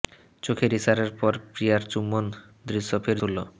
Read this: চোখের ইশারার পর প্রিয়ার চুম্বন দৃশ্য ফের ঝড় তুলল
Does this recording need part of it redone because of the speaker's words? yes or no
yes